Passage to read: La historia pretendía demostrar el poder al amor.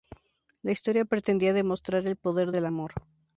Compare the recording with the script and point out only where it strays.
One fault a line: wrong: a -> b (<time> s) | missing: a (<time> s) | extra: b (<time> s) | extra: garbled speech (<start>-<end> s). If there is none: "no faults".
wrong: al -> del (2.5 s)